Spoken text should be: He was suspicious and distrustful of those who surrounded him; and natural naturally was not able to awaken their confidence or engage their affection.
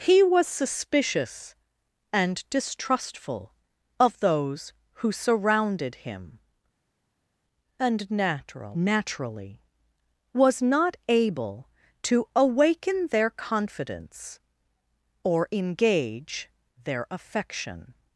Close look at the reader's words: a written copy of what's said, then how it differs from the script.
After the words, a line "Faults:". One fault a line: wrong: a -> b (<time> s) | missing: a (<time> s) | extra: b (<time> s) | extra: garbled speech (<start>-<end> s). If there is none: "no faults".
He was suspicious and distrustful of those who surrounded him; and natural naturally was not able to awaken their confidence or engage their affection.
Faults:
no faults